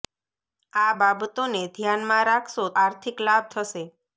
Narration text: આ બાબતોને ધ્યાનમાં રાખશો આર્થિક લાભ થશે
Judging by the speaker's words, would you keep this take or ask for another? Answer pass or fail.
pass